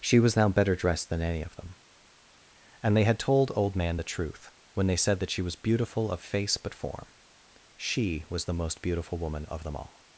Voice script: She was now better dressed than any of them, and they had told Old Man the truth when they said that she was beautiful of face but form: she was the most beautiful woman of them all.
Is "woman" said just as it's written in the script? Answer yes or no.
yes